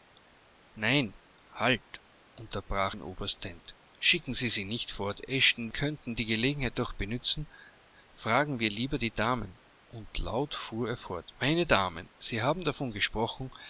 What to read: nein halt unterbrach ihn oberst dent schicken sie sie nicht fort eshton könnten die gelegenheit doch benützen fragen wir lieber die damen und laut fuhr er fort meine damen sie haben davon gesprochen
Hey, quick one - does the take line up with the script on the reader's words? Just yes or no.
yes